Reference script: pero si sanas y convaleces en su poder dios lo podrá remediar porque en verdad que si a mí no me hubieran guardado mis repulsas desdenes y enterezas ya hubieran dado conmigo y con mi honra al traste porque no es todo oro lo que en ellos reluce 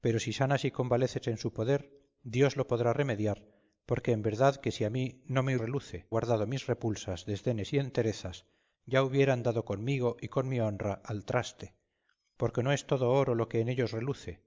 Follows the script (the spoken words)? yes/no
no